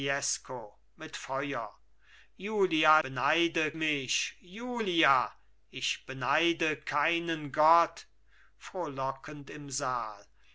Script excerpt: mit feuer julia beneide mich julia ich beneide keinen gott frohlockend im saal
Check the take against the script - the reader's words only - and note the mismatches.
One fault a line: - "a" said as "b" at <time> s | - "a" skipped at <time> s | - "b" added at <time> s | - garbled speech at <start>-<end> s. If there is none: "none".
none